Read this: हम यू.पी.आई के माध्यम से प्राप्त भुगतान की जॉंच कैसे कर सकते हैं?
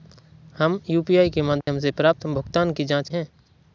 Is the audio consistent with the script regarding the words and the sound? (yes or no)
no